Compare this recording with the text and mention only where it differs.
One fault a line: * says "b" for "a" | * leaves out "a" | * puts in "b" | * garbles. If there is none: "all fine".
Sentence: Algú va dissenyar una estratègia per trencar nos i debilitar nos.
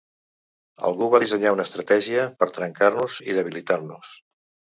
all fine